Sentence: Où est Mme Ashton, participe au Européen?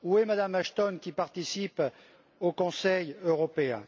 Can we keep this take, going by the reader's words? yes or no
no